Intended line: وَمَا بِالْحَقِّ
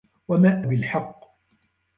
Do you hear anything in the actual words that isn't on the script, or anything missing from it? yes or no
no